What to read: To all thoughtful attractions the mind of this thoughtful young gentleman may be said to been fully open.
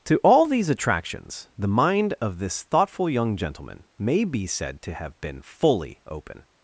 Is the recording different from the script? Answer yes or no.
yes